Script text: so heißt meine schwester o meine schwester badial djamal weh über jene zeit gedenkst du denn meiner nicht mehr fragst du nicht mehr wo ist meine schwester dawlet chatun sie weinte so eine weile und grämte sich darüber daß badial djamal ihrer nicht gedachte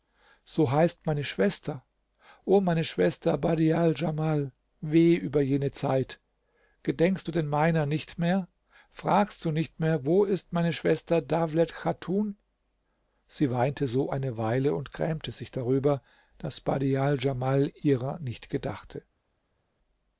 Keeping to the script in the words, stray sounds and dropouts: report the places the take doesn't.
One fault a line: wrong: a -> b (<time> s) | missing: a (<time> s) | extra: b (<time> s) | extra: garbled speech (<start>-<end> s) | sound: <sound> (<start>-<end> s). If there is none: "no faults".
no faults